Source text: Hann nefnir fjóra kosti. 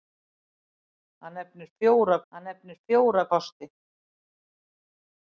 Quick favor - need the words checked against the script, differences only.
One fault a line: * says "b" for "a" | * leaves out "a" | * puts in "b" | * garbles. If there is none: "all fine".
* puts in "hann nefnir fjóra"